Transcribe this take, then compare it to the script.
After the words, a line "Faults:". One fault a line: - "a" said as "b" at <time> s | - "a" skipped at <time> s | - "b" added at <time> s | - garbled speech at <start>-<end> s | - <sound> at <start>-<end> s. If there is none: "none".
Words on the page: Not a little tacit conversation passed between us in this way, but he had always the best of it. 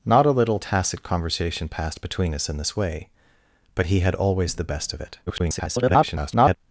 Not a little tacit conversation passed between us in this way, but he had always the best of it. [garbled]
Faults:
- garbled speech at 5.3-6.6 s